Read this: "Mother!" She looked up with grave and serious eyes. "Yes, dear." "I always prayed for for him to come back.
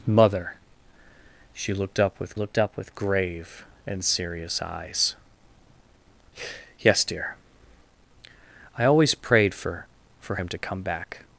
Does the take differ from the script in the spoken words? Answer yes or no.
yes